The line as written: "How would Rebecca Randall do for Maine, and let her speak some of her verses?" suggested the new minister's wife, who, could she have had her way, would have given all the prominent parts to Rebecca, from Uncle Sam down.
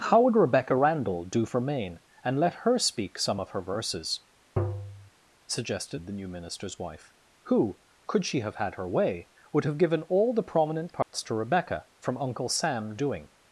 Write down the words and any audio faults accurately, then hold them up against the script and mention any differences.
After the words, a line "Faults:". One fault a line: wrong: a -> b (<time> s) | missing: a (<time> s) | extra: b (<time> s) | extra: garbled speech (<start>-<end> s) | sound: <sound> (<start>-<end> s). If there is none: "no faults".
"How would Rebecca Randall do for Maine, and let her speak some of her verses?" suggested the new minister's wife, who, could she have had her way, would have given all the prominent parts to Rebecca, from Uncle Sam doing.
Faults:
sound: tap (4.6-5.1 s)
sound: dropout (11.0-11.1 s)
wrong: down -> doing (13.0 s)